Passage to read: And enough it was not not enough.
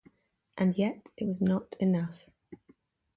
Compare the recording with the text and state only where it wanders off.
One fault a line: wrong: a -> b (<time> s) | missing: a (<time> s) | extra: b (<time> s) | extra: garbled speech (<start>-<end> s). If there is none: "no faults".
wrong: enough -> yet (0.8 s)
missing: not (1.7 s)